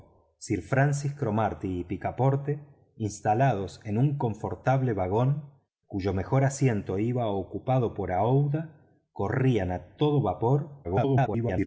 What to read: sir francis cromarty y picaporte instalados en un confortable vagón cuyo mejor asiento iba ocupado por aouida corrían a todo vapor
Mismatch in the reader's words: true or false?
true